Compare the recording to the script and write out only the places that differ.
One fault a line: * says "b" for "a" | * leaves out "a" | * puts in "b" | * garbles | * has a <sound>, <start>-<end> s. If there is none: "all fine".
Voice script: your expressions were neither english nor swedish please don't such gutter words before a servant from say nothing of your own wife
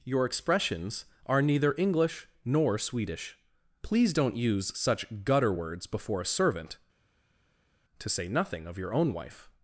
* says "are" for "were"
* puts in "use"
* says "to" for "from"